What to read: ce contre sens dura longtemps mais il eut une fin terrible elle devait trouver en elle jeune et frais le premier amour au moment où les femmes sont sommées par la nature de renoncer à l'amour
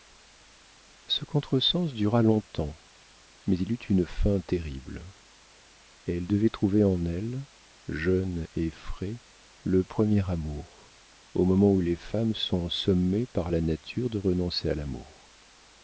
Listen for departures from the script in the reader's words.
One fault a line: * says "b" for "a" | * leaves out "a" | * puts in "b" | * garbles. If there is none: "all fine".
all fine